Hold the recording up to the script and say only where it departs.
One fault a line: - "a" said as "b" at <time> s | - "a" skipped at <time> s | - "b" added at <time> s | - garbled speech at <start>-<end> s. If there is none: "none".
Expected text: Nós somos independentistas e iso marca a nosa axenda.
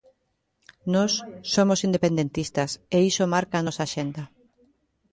none